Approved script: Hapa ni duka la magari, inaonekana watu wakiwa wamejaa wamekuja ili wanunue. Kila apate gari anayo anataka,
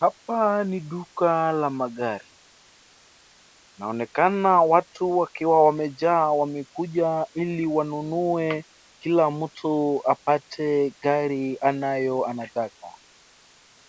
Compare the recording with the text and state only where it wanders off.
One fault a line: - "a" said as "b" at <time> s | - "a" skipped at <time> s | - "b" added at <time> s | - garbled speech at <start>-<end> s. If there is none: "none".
- "mtu" added at 9.3 s